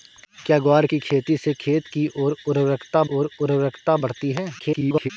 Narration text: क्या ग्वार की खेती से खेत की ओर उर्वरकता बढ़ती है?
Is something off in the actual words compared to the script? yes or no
yes